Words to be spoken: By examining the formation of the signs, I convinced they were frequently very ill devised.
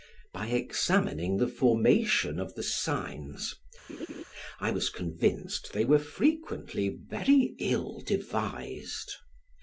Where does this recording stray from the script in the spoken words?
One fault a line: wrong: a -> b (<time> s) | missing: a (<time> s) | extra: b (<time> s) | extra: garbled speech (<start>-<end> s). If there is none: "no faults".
extra: was (4.7 s)